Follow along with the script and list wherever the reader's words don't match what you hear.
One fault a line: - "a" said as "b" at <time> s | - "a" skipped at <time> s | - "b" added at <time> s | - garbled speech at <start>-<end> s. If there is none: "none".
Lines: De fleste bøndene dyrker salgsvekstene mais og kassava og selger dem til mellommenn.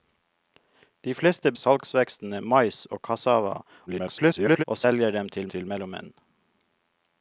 - "bøndene dyrker" skipped at 1.5 s
- garbled speech at 3.9-4.6 s
- "til" added at 5.5 s